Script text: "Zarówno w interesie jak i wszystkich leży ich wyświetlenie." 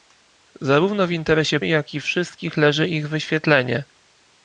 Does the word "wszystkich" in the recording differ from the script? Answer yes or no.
no